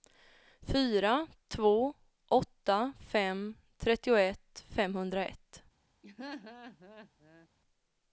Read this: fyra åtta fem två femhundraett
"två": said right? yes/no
no